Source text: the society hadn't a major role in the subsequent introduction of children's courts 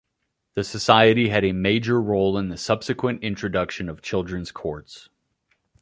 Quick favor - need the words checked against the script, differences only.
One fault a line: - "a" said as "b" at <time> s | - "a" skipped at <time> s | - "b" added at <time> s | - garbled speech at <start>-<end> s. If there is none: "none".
- "hadn't" said as "had" at 1.3 s